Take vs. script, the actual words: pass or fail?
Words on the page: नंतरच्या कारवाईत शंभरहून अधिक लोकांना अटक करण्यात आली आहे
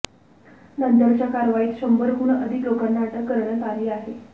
pass